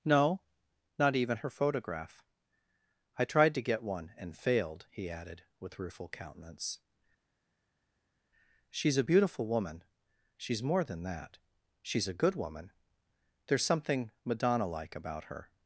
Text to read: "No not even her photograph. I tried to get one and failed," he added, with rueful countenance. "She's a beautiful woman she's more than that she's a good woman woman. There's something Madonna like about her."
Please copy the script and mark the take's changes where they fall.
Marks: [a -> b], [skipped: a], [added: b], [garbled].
"No not even her photograph. I tried to get one and failed," he added, with rueful countenance. "She's a beautiful woman she's more than that she's a good woman [skipped: woman.] There's something Madonna like about her."